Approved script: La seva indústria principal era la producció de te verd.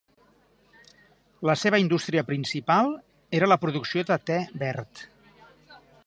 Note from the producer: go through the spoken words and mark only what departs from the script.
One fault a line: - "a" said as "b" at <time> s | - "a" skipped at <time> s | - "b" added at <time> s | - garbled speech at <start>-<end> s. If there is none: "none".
none